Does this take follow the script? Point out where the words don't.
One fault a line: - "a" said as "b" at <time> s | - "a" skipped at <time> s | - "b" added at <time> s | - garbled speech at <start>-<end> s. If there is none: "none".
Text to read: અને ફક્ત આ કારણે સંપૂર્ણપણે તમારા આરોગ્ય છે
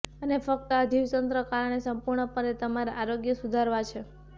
- "જીવતંત્ર" added at 0.9 s
- "સુધારવા" added at 3.4 s